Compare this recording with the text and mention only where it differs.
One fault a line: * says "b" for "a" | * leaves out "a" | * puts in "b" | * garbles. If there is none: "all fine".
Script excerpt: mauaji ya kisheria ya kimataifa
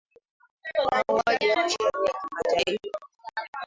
all fine